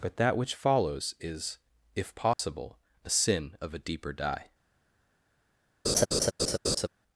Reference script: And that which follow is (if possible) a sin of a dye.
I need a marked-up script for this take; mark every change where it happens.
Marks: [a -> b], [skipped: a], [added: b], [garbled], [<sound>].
[And -> But] that which [follow -> follows] is (if possible) [dropout] a sin of a [added: deeper] dye. [laugh]